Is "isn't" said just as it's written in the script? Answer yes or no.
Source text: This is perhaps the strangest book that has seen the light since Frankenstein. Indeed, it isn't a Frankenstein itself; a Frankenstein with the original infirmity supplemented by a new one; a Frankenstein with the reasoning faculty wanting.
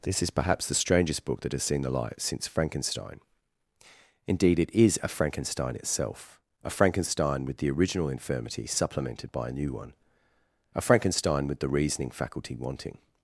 no